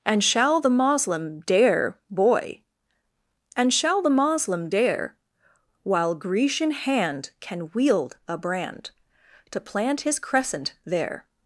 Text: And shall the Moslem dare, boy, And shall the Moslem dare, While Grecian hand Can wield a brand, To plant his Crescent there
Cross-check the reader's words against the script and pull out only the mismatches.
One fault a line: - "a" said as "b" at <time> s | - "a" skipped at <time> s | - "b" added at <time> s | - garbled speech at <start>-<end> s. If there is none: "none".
none